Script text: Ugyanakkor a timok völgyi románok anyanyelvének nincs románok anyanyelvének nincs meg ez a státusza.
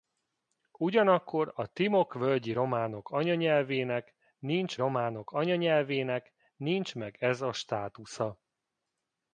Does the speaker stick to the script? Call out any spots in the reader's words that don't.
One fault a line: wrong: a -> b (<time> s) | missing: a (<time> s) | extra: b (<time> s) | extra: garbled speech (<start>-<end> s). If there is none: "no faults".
no faults